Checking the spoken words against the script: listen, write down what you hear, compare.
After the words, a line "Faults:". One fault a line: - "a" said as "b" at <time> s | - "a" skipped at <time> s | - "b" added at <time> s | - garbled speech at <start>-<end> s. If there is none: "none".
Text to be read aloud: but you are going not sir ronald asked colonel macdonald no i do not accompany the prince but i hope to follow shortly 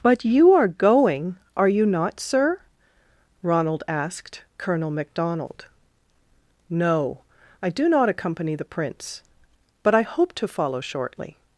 but you are going are you not sir ronald asked colonel macdonald no i do not accompany the prince but i hope to follow shortly
Faults:
- "are you" added at 1.6 s